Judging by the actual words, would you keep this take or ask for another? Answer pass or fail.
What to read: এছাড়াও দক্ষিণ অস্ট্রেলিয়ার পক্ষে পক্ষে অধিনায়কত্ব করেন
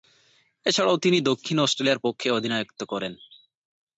fail